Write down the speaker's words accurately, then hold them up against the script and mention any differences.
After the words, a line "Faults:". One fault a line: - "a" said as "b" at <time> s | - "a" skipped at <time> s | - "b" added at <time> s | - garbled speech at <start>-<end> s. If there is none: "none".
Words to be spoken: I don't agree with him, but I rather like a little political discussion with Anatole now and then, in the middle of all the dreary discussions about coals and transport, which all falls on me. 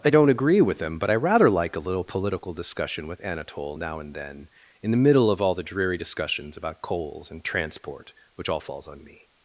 I don't agree with him, but I rather like a little political discussion with Anatole now and then, in the middle of all the dreary discussions about coals and transport, which all falls on me.
Faults:
none